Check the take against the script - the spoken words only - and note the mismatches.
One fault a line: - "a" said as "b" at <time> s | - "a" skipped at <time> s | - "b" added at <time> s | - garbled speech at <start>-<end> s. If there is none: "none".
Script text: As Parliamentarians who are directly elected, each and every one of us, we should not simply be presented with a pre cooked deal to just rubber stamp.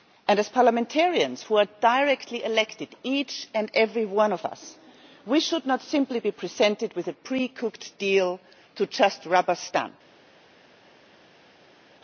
none